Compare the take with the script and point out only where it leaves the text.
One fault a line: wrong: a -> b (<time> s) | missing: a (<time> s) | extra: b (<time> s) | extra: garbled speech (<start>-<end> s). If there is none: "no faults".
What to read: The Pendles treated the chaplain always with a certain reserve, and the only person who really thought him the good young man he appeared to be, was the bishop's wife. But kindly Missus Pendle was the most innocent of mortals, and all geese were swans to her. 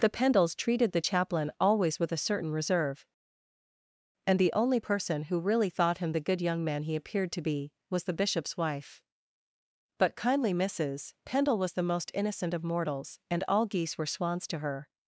no faults